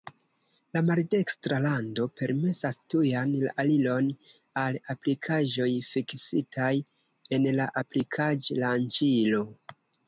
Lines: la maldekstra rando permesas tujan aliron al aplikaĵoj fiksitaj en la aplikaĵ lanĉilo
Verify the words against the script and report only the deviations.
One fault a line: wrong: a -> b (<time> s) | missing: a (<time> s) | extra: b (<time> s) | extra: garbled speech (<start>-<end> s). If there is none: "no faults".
no faults